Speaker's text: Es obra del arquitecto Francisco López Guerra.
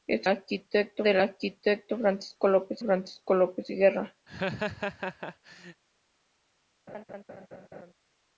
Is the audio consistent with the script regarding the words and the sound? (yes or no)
no